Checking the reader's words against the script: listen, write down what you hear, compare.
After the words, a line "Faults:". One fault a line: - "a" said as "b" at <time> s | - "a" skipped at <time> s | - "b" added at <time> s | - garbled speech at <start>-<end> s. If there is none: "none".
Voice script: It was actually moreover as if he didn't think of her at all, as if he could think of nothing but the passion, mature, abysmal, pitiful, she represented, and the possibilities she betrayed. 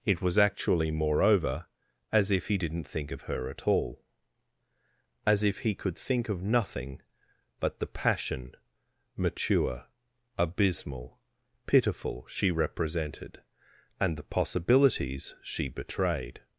It was actually moreover as if he didn't think of her at all, as if he could think of nothing but the passion, mature, abysmal, pitiful, she represented, and the possibilities she betrayed.
Faults:
none